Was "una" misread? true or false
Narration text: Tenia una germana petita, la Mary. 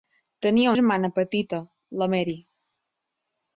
true